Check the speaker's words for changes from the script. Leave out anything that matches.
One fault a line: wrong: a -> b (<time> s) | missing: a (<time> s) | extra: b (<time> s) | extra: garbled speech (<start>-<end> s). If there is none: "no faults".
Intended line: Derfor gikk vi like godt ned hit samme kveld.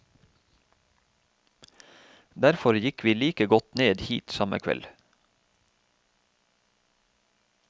no faults